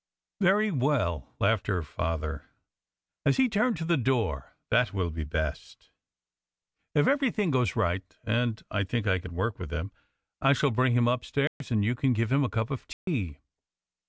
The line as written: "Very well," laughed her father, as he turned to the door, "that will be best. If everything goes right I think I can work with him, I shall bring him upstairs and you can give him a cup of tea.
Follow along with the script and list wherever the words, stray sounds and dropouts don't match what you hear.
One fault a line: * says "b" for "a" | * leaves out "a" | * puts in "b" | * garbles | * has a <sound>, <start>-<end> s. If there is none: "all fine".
* puts in "and"
* has a dropout, 11.5-11.6 s
* has a dropout, 12.9-13.1 s